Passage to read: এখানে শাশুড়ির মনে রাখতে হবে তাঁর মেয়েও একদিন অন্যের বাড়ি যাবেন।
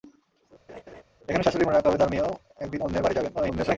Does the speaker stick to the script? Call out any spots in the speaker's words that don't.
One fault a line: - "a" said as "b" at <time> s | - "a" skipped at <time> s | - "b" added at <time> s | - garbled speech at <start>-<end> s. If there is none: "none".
- garbled speech at 3.3-3.8 s